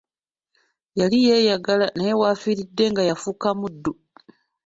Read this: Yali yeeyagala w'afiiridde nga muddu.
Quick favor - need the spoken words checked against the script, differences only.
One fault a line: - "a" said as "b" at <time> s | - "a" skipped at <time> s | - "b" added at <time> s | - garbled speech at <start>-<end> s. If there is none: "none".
- "naye" added at 1.9 s
- "yafuuka" added at 3.1 s